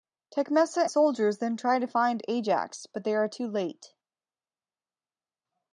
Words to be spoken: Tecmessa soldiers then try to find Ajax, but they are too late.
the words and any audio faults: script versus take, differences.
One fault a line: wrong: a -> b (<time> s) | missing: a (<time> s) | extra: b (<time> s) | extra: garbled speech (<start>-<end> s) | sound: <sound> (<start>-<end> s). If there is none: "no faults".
no faults